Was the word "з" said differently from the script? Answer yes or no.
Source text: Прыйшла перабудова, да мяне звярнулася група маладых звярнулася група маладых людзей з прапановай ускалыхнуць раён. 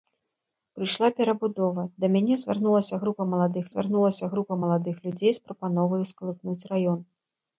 no